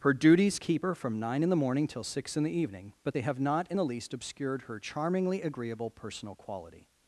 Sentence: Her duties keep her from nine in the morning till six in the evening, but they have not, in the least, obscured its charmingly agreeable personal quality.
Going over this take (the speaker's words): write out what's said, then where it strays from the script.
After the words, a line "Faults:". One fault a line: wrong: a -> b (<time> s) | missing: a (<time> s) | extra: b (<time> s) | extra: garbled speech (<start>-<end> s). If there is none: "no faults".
Her duties keep her from nine in the morning till six in the evening, but they have not, in the least, obscured her charmingly agreeable personal quality.
Faults:
wrong: its -> her (4.6 s)